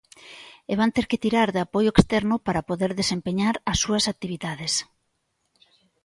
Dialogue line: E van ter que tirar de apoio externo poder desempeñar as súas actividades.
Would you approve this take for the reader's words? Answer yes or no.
no